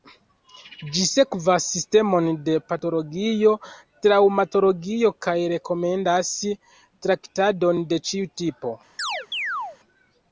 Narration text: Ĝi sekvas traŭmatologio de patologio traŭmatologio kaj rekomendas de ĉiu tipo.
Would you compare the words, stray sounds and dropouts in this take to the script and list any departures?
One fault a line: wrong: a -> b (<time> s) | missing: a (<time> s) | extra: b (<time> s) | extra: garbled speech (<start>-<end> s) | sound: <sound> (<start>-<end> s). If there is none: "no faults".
wrong: traŭmatologio -> sistemon (1.7 s)
extra: traktadon (7.1 s)
sound: chirp (9.0-9.8 s)